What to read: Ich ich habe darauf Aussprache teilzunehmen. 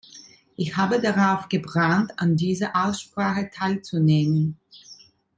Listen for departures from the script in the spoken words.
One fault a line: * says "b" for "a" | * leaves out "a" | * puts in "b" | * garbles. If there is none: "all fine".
* leaves out "ich"
* puts in "gebrannt an dieser"